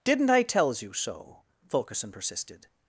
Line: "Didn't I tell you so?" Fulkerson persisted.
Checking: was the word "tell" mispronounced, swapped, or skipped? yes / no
yes